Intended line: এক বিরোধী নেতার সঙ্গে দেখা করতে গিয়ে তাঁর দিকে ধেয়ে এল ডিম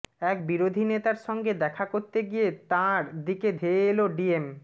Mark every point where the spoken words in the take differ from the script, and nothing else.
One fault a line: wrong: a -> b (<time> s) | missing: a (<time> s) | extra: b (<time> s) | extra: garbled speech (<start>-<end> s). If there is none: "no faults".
no faults